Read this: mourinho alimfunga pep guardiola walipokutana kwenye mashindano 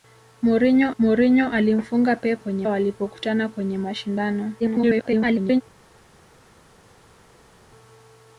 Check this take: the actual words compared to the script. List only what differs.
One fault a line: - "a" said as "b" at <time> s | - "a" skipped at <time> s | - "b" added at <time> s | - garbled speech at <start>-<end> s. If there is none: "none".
- "mourinho" added at 1.0 s
- "guardiola" said as "kwenye" at 2.4 s
- garbled speech at 4.6-5.6 s